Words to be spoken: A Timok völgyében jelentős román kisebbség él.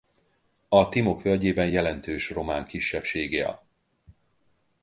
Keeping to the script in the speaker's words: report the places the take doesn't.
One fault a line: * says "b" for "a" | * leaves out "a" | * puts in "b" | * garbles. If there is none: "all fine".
all fine